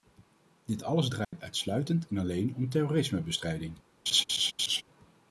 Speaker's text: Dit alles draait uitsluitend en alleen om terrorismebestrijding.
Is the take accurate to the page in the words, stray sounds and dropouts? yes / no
no